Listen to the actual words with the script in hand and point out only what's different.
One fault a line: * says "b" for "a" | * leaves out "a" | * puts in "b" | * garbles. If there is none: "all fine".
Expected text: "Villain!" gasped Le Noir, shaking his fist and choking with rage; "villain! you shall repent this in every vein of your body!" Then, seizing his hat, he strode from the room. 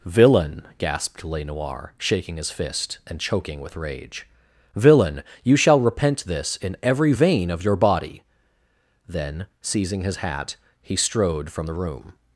all fine